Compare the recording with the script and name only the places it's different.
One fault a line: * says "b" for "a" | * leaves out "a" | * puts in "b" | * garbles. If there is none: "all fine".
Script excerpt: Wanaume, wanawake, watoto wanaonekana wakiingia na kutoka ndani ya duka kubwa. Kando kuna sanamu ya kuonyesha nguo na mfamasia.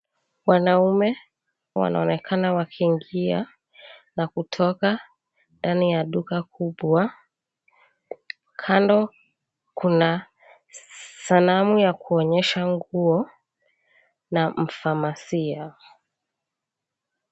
* leaves out "wanawake watoto"